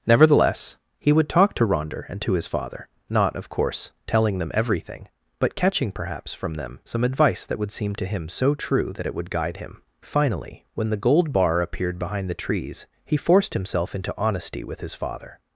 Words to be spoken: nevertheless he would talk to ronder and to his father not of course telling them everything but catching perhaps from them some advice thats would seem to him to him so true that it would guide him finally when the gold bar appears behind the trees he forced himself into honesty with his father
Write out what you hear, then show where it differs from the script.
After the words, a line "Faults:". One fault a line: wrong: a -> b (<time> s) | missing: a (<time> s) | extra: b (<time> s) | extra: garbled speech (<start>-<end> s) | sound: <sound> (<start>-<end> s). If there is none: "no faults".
nevertheless he would talk to ronder and to his father not of course telling them everything but catching perhaps from them some advice that would seem to him so true that it would guide him finally when the gold bar appeared behind the trees he forced himself into honesty with his father
Faults:
wrong: thats -> that (7.5 s)
missing: to him (8.3 s)
wrong: appears -> appeared (11.6 s)